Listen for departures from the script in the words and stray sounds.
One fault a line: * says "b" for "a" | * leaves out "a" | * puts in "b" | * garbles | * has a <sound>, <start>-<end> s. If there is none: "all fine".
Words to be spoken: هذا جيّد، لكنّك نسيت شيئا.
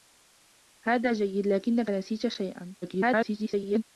* garbles